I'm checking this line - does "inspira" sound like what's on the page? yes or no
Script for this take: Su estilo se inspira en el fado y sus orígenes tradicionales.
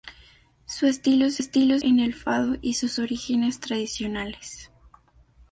no